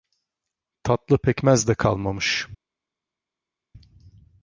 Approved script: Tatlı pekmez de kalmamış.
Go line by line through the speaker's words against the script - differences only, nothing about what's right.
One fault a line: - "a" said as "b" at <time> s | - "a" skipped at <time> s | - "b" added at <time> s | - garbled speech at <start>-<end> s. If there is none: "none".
none